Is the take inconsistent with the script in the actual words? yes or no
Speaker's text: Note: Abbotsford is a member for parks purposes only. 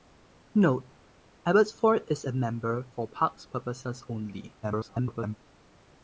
yes